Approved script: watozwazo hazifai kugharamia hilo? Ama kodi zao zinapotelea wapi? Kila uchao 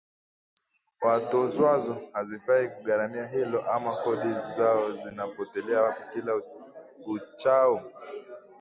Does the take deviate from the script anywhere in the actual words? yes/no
no